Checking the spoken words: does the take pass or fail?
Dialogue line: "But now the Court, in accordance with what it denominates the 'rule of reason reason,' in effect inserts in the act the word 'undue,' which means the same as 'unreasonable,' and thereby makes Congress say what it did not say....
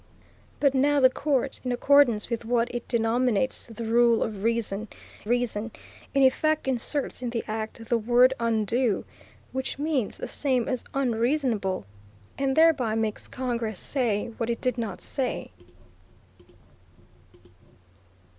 pass